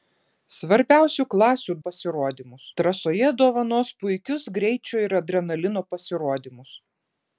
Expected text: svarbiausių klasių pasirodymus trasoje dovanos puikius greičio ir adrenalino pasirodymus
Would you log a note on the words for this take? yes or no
no